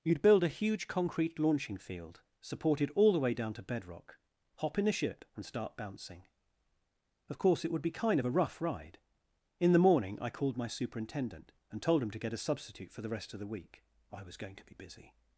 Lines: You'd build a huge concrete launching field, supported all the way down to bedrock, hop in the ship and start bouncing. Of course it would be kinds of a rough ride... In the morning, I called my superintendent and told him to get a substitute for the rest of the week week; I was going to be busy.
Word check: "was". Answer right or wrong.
right